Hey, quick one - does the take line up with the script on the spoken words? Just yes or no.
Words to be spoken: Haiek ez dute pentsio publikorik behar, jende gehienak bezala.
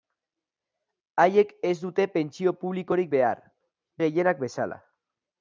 no